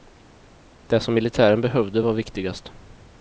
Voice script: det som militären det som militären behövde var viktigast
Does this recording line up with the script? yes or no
no